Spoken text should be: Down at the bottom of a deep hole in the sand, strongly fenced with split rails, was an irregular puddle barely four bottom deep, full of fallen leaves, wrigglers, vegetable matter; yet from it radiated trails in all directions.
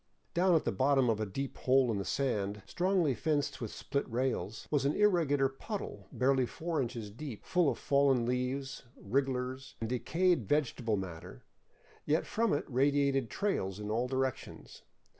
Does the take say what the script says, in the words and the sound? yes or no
no